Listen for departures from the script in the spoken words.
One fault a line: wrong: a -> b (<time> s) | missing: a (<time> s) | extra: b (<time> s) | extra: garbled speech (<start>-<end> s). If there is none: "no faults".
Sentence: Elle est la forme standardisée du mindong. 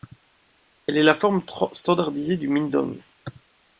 no faults